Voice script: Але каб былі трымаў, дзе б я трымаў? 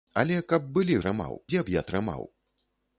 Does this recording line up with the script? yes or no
yes